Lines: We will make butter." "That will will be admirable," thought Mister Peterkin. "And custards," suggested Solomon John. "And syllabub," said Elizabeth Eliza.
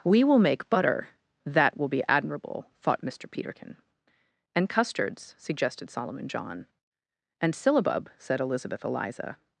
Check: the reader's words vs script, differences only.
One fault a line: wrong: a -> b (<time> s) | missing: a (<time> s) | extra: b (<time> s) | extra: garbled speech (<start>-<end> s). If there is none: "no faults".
missing: will (1.9 s)